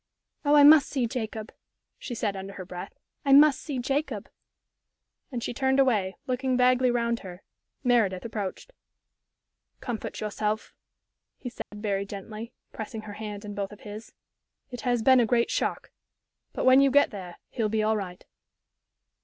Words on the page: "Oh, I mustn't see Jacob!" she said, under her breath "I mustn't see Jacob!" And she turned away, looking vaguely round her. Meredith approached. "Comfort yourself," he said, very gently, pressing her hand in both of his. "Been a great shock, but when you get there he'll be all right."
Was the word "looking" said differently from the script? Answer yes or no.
no